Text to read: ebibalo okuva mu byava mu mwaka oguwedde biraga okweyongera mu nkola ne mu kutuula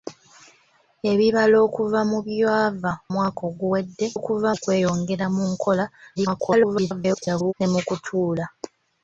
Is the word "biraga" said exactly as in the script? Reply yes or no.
no